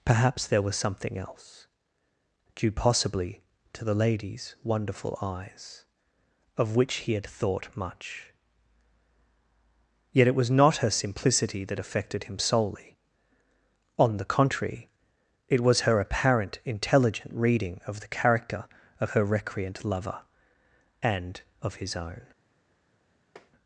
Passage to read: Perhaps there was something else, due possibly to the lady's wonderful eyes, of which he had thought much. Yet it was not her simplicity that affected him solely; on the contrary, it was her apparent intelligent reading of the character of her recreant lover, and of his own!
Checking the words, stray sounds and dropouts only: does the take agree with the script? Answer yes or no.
no